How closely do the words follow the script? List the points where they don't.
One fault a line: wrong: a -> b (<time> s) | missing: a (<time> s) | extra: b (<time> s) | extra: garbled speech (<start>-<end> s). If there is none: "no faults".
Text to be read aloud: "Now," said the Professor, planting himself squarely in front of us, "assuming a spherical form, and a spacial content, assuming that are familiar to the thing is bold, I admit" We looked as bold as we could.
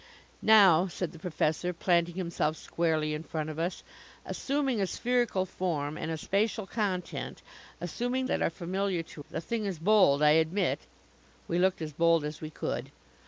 no faults